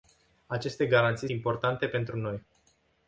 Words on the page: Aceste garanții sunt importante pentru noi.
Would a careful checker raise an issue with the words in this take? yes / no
yes